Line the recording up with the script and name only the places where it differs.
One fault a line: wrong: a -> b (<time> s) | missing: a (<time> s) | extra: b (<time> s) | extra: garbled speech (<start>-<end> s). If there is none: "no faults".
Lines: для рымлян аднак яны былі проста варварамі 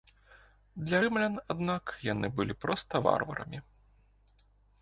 no faults